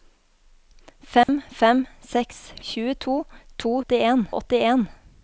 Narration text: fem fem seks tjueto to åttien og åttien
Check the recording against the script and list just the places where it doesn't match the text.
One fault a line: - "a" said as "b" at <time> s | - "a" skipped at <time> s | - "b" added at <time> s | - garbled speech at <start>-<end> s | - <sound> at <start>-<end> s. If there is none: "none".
- dropout at 1.2-1.3 s